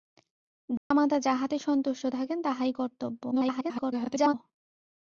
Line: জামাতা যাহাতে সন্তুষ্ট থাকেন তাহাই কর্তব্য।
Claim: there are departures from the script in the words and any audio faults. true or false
true